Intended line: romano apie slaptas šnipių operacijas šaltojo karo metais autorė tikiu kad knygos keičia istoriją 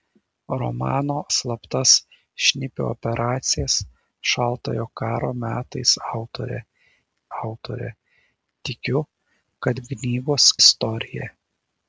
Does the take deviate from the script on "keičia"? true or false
true